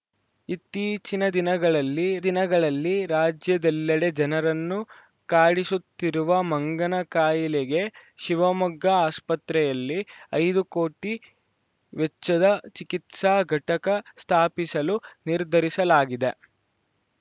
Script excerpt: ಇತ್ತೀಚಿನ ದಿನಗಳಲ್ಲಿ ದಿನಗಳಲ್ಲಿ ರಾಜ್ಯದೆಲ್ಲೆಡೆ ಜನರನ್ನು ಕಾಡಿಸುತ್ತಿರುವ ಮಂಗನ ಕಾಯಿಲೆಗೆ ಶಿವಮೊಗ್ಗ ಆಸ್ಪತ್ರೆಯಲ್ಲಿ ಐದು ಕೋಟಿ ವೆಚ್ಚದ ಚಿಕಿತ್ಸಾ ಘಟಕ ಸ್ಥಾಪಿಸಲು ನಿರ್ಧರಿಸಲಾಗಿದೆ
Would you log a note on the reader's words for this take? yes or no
no